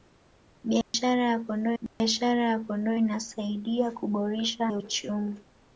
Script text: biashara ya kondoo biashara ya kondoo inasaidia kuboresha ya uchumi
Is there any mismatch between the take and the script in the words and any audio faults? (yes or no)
yes